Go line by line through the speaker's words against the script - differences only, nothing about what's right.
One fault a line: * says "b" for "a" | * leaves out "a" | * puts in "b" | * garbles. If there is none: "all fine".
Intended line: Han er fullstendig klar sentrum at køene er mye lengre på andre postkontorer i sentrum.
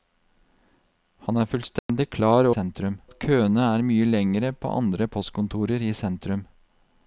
all fine